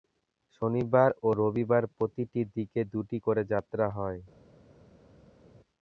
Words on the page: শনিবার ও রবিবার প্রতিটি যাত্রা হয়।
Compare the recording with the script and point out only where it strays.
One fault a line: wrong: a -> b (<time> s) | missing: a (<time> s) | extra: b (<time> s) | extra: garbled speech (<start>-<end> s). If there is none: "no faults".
extra: দিকে দুটি করে (2.5 s)